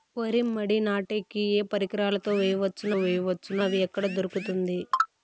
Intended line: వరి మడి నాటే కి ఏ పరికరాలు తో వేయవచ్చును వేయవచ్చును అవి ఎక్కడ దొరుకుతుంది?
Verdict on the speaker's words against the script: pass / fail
pass